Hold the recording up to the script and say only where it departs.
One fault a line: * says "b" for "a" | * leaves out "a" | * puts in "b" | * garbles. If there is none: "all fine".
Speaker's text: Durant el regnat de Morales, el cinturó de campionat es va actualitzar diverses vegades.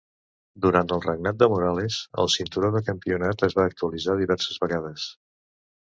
all fine